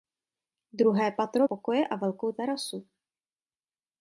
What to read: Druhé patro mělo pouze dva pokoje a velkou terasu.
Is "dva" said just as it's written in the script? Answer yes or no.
no